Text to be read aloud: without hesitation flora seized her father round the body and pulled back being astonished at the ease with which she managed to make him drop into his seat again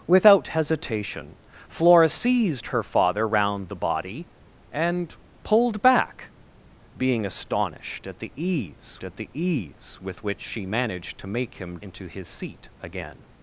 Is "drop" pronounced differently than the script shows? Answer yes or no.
yes